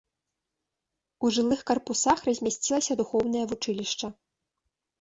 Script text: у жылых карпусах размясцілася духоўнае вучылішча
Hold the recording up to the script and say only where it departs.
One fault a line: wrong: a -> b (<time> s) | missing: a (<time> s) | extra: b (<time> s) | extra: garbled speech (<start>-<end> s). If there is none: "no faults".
no faults